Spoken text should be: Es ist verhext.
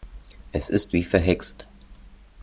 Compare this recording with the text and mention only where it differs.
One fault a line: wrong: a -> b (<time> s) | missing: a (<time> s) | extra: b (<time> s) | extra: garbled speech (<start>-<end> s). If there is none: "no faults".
extra: wie (0.9 s)